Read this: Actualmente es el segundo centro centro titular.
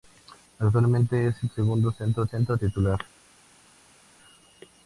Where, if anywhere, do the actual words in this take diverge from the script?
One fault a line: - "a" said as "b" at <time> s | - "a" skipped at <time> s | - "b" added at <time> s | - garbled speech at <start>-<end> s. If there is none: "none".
none